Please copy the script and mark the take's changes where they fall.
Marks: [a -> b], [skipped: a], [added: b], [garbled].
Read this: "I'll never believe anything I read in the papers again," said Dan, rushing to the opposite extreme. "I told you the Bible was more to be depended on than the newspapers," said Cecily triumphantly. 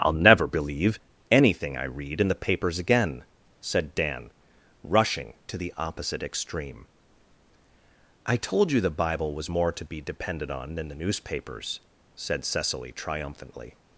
"I'll never believe anything I read in the papers again," said Dan, rushing to the opposite extreme. "I told you the Bible was more to be depended on than the newspapers," said Cecily triumphantly.